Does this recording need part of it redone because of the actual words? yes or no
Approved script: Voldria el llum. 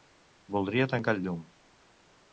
yes